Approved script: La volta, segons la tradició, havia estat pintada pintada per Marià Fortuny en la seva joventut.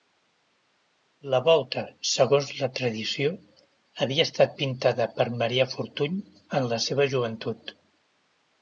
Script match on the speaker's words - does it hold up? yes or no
no